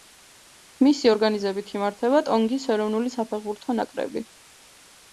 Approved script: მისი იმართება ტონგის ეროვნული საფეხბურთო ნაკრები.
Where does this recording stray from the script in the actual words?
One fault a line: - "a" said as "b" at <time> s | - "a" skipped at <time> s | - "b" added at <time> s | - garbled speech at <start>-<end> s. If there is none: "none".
- "ორგანიზებით" added at 1.1 s